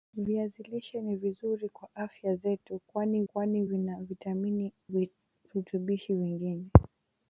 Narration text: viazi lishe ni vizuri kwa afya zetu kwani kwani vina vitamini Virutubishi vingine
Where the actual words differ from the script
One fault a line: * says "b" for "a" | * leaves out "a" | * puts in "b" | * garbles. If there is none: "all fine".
all fine